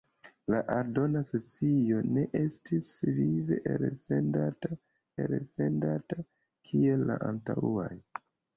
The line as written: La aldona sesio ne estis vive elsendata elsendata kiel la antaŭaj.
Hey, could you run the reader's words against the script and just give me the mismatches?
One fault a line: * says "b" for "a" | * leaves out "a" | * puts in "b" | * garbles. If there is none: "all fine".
all fine